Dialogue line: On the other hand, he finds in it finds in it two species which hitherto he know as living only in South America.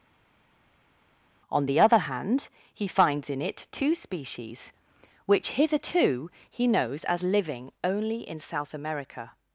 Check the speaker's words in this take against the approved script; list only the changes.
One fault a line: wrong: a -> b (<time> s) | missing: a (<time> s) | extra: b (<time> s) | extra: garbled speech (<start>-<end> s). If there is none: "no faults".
missing: finds in it (3.7 s)
wrong: know -> knows (6.7 s)